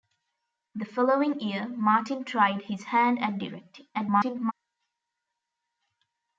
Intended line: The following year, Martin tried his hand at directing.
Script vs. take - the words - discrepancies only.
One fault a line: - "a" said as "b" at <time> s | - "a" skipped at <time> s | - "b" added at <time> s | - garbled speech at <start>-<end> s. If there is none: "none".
- garbled speech at 3.9-4.5 s